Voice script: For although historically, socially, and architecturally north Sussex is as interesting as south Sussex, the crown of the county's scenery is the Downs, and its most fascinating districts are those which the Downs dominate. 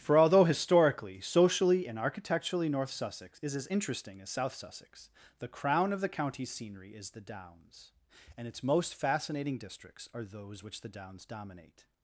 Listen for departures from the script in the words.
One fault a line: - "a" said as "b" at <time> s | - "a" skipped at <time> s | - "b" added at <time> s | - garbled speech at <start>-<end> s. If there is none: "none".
none